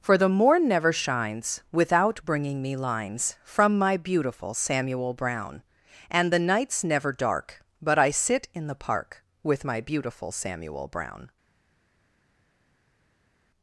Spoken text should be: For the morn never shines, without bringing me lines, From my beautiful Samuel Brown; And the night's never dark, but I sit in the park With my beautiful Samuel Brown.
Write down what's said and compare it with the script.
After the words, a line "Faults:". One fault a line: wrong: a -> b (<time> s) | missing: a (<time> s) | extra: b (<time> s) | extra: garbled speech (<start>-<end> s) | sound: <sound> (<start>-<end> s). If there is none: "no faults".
For the morn never shines, without bringing me lines, From my beautiful Samuel Brown; And the night's never dark, but I sit in the park With my beautiful Samuel Brown.
Faults:
no faults